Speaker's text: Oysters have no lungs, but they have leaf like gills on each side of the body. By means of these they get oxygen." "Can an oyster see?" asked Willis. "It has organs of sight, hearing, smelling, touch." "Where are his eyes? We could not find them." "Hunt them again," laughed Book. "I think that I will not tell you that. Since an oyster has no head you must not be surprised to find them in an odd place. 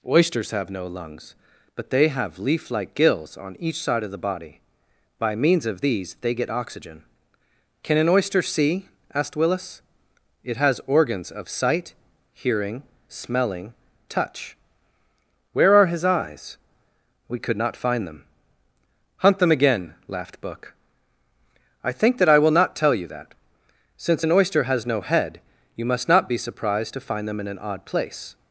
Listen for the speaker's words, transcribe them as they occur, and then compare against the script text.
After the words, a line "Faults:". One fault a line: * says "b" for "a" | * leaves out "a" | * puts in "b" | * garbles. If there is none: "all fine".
Oysters have no lungs, but they have leaf like gills on each side of the body. By means of these they get oxygen." "Can an oyster see?" asked Willis. "It has organs of sight, hearing, smelling, touch." "Where are his eyes? We could not find them." "Hunt them again," laughed Book. "I think that I will not tell you that. Since an oyster has no head you must not be surprised to find them in an odd place.
Faults:
all fine